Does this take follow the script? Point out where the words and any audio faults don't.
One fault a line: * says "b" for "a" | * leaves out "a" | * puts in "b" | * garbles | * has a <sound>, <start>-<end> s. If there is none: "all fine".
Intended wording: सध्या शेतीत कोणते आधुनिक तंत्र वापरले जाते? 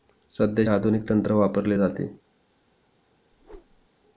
* leaves out "शेतीत कोणते"
* has a whoosh, 3.3-3.9 s